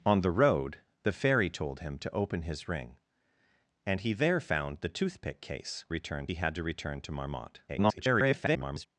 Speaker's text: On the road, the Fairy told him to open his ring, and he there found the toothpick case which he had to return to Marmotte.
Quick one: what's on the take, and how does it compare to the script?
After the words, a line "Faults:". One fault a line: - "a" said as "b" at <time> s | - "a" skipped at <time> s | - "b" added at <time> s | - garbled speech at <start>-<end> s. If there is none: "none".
On the road, the Fairy told him to open his ring, and he there found the toothpick case return he had to return to Marmotte. [garbled]
Faults:
- "which" said as "return" at 5.9 s
- garbled speech at 7.7-8.9 s